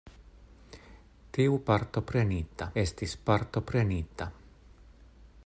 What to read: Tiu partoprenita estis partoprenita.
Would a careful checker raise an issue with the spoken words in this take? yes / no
no